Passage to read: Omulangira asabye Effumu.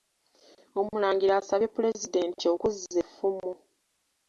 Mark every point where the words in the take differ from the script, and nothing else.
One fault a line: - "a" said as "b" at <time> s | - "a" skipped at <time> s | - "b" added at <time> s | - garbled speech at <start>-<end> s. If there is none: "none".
- "Pulezidenti okuzza" added at 1.7 s